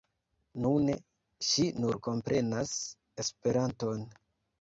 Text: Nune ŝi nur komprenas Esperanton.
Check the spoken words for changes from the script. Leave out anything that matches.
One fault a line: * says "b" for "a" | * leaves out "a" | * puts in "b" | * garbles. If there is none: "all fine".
all fine